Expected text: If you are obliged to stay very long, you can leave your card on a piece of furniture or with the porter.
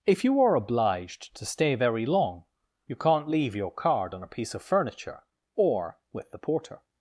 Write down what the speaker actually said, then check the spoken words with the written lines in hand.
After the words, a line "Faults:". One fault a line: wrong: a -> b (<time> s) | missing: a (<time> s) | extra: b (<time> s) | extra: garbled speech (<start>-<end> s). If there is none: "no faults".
If you are obliged to stay very long, you can't leave your card on a piece of furniture or with the porter.
Faults:
wrong: can -> can't (3.0 s)